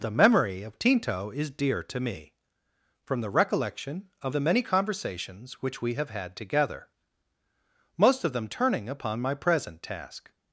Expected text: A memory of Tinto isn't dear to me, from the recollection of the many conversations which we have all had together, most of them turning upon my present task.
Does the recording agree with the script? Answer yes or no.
no